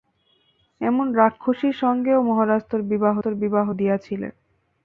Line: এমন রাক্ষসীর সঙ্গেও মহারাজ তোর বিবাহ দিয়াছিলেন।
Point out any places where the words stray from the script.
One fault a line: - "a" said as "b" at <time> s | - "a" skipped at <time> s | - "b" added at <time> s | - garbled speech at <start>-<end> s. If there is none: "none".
- "তোর বিবাহ" added at 3.2 s